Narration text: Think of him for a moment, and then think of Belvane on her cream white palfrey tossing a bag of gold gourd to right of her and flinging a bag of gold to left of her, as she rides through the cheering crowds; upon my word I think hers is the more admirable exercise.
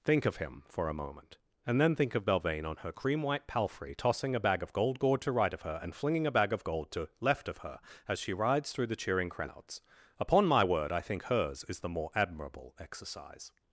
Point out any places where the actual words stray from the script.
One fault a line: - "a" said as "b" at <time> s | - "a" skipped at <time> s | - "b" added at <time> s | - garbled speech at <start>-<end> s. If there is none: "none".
none